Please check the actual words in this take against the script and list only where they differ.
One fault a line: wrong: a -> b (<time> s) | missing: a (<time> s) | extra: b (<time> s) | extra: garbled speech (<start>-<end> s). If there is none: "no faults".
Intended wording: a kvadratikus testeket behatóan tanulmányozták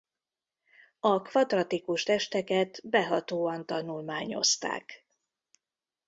no faults